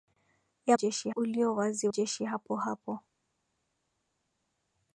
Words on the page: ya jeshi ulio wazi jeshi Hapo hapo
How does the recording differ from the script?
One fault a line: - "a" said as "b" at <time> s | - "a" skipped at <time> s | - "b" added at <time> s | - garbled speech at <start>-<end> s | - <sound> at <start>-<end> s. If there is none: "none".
none